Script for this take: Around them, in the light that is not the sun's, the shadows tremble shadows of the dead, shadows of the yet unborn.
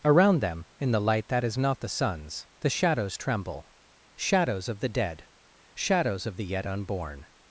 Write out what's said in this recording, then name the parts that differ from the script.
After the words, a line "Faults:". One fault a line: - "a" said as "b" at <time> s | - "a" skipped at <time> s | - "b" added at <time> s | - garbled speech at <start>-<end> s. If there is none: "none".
Around them, in the light that is not the sun's, the shadows tremble shadows of the dead, shadows of the yet unborn.
Faults:
none